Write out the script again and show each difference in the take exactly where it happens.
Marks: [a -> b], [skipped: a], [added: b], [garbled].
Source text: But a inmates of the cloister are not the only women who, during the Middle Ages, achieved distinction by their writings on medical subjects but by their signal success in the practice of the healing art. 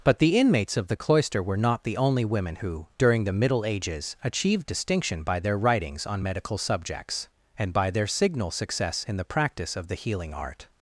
But [a -> the] inmates of the cloister [are -> were] not the only women who, during the Middle Ages, achieved distinction by their writings on medical subjects [but -> and] by their signal success in the practice of the healing art.